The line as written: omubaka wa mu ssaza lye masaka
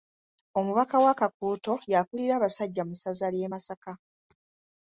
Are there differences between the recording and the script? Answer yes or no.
yes